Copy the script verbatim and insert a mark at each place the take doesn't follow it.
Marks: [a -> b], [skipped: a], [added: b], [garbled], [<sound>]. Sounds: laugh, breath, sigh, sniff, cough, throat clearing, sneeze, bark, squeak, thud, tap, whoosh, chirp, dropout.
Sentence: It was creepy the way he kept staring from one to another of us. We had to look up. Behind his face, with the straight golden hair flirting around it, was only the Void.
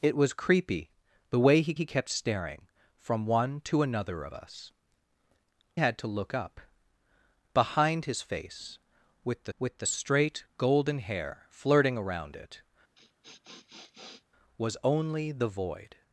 It was creepy the way he [added: he] kept staring from one to another of us. [skipped: We] had to look up. Behind his face, with the [added: with the] straight golden hair flirting around it, [sniff] was only the Void.